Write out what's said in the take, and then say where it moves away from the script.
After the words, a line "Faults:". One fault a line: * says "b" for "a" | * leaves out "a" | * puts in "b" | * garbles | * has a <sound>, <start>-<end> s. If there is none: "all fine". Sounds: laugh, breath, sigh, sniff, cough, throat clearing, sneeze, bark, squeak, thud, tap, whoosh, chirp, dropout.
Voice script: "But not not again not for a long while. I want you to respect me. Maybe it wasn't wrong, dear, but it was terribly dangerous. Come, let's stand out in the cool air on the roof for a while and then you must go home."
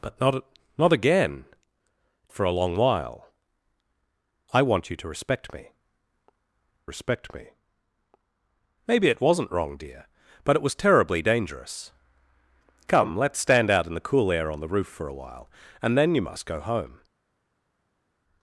"But not not again for a long while. I want you to respect me respect me. Maybe it wasn't wrong, dear, but it was terribly dangerous. Come, let's stand out in the cool air on the roof for a while and then you must go home."
Faults:
* leaves out "not"
* puts in "respect me"